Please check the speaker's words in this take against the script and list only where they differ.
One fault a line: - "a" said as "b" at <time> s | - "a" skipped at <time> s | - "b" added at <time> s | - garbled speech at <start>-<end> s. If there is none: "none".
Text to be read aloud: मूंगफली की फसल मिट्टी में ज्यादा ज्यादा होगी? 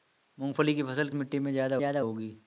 none